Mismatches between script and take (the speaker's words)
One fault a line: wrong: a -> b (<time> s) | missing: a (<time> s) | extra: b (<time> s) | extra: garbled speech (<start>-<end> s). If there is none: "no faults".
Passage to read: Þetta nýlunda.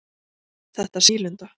no faults